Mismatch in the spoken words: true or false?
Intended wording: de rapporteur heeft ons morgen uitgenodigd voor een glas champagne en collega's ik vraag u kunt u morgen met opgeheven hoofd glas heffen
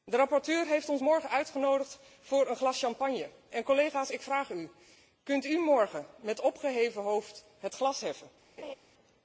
true